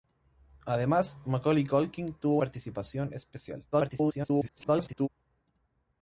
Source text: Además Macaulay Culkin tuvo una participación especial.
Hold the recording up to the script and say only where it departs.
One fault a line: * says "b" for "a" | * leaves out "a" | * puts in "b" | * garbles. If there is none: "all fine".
* leaves out "una"
* garbles